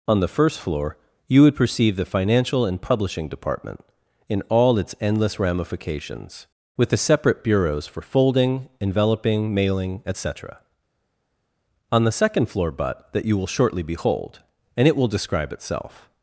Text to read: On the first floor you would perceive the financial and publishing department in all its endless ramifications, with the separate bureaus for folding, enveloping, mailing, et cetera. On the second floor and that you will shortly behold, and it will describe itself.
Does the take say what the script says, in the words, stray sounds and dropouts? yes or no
no